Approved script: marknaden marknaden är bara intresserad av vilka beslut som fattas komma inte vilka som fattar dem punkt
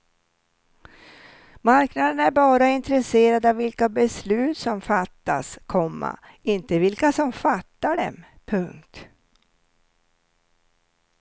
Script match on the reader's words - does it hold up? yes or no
no